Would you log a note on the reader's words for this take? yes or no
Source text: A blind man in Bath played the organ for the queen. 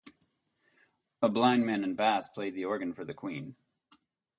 no